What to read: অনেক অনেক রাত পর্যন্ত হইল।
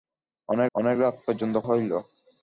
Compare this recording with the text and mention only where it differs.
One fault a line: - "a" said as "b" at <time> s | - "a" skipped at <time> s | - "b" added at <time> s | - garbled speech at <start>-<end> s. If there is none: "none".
none